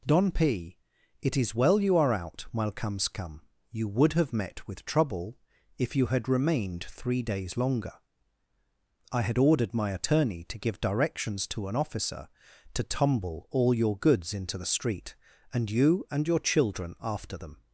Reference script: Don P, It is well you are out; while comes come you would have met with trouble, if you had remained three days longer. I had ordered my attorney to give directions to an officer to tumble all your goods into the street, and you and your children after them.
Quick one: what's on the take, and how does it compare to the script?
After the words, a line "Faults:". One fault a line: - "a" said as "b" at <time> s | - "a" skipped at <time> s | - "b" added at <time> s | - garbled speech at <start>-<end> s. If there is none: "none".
Don P, It is well you are out; while comes come you would have met with trouble, if you had remained three days longer. I had ordered my attorney to give directions to an officer to tumble all your goods into the street, and you and your children after them.
Faults:
none